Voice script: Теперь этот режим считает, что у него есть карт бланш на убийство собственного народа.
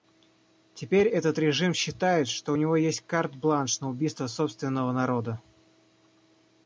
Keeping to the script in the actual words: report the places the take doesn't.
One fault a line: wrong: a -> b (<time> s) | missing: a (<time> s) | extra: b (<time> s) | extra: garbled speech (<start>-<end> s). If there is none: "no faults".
no faults